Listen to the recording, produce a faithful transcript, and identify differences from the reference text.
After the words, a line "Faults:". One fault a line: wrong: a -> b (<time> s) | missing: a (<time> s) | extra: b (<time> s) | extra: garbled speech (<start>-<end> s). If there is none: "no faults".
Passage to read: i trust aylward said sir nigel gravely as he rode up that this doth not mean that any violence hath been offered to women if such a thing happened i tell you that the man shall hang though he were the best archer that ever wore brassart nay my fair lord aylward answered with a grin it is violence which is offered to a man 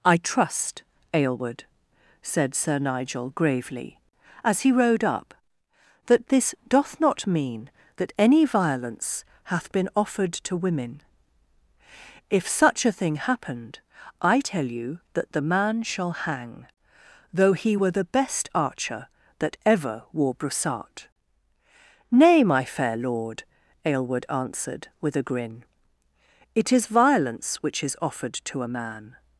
i trust aylward said sir nigel gravely as he rode up that this doth not mean that any violence hath been offered to women if such a thing happened i tell you that the man shall hang though he were the best archer that ever wore brassart nay my fair lord aylward answered with a grin it is violence which is offered to a man
Faults:
no faults